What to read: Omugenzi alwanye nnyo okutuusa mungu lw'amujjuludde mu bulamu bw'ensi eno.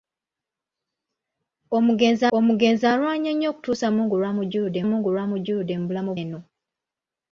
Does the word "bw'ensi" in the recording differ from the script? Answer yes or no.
yes